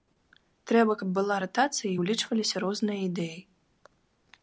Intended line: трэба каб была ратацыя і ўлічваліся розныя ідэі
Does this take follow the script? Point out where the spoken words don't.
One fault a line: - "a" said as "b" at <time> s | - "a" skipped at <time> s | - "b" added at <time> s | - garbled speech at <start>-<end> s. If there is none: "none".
none